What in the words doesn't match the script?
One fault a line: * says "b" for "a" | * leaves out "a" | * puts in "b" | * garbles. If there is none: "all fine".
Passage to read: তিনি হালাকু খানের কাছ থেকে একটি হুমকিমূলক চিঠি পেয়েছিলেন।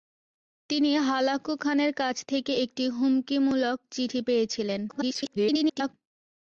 * garbles